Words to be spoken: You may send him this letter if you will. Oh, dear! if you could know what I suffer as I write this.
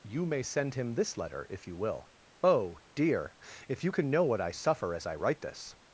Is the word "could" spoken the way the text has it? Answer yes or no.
no